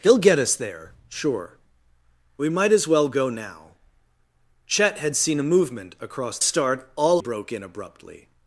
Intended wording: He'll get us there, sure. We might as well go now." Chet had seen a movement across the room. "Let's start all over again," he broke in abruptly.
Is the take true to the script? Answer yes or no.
no